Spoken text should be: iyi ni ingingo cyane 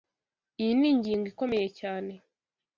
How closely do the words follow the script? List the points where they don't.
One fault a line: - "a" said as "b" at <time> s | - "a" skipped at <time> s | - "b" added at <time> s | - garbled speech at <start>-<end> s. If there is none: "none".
- "ikomeye" added at 1.3 s